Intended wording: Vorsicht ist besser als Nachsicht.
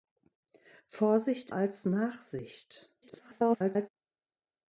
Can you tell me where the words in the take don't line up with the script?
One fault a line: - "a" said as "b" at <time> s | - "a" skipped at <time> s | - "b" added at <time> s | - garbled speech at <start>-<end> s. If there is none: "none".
- "ist besser" skipped at 1.5 s
- garbled speech at 3.0-3.9 s